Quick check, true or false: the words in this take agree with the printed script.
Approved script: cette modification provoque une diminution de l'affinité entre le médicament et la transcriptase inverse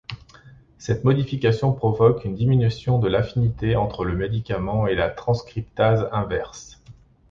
true